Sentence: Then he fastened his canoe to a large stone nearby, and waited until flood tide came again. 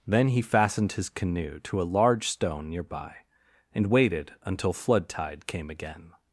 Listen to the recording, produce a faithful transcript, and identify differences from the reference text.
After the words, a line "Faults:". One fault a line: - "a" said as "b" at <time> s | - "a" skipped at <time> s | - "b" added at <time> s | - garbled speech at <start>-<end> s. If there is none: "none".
Then he fastened his canoe to a large stone nearby, and waited until flood tide came again.
Faults:
none